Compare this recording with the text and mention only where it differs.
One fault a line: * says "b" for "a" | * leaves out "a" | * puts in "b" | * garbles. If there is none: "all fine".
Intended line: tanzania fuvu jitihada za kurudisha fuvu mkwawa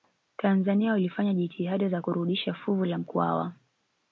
* says "walifanya" for "fuvu"
* puts in "la"